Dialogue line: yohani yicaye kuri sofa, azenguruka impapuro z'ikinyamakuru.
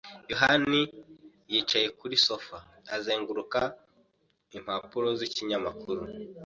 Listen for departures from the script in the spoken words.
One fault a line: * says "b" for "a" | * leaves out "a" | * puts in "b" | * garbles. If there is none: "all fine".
all fine